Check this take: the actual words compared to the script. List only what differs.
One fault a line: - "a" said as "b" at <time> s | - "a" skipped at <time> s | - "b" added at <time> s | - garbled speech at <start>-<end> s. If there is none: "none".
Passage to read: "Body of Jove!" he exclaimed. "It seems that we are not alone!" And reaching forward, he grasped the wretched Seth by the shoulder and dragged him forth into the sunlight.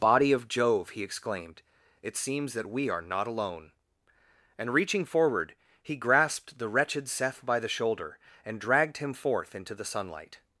none